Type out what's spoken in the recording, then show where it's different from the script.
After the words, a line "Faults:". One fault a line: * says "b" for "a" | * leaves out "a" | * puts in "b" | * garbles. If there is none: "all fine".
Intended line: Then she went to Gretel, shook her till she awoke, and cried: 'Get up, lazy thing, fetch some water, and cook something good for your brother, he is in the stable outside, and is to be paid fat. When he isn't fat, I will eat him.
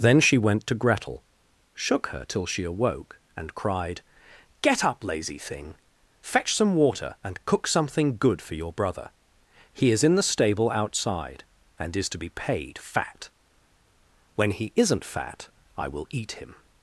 Then she went to Gretel, shook her till she awoke, and cried: 'Get up, lazy thing, fetch some water, and cook something good for your brother, he is in the stable outside, and is to be paid fat. When he isn't fat, I will eat him.
Faults:
all fine